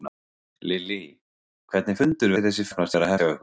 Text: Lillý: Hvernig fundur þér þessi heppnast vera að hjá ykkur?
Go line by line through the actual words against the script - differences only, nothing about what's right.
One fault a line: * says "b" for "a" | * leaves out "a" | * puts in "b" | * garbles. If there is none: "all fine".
all fine